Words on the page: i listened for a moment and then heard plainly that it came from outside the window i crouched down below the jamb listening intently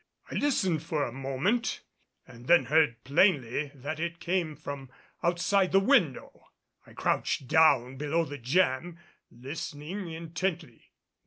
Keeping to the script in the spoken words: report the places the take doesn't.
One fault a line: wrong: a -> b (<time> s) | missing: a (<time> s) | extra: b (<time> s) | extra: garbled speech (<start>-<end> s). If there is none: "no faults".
no faults